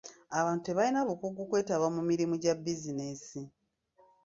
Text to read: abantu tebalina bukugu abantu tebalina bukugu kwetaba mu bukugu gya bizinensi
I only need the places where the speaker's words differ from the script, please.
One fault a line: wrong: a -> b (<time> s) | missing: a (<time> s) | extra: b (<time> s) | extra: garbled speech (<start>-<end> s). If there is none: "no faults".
missing: abantu tebalina bukugu (1.4 s)
wrong: bukugu -> mirimu (2.1 s)